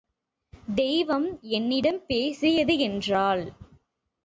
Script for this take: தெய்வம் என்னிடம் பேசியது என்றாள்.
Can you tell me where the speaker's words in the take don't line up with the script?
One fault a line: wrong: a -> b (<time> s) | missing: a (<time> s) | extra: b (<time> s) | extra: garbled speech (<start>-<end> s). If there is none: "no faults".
no faults